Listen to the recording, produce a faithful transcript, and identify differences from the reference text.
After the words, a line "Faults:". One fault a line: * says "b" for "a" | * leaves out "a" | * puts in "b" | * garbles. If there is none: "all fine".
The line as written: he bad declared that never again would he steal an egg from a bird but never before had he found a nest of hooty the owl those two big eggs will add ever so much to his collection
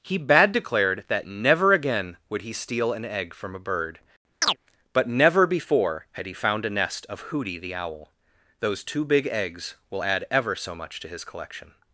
he bad declared that never again would he steal an egg from a bird but never before had he found a nest of hooty the owl those two big eggs will add ever so much to his collection
Faults:
all fine